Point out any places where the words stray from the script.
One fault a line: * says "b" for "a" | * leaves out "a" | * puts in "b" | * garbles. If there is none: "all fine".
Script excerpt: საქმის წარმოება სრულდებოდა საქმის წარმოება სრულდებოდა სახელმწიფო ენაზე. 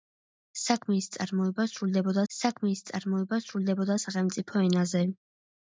all fine